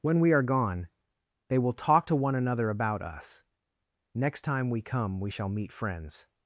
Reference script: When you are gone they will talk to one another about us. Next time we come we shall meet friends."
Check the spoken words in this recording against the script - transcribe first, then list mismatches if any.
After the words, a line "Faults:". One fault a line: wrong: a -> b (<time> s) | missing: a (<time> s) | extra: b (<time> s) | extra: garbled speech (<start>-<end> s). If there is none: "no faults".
When we are gone they will talk to one another about us. Next time we come we shall meet friends."
Faults:
wrong: you -> we (0.2 s)